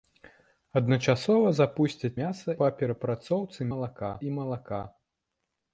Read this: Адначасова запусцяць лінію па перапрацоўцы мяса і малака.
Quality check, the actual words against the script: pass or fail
fail